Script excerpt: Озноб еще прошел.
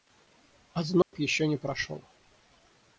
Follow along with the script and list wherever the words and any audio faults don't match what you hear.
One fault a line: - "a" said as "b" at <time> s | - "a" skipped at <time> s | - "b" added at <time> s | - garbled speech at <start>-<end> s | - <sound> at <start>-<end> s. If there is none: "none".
- dropout at 1.0-1.1 s
- "не" added at 1.4 s